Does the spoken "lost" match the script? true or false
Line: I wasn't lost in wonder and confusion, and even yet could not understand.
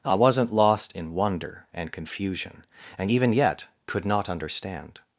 true